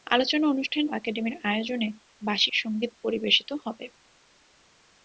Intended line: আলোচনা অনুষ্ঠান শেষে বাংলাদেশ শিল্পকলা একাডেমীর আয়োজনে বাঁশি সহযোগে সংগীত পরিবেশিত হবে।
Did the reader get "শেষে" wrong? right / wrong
wrong